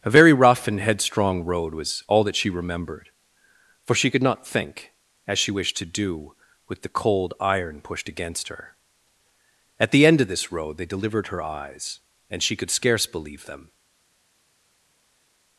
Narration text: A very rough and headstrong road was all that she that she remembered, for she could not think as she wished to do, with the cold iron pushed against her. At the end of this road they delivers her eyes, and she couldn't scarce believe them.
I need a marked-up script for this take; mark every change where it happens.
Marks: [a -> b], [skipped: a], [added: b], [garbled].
A very rough and headstrong road was all that she [skipped: that she] remembered, for she could not think as she wished to do, with the cold iron pushed against her. At the end of this road they [delivers -> delivered] her eyes, and she [couldn't -> could] scarce believe them.